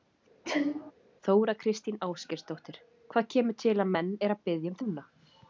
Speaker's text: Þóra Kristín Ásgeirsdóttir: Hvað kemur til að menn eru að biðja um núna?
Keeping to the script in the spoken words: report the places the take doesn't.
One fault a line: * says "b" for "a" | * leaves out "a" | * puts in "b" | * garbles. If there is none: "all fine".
all fine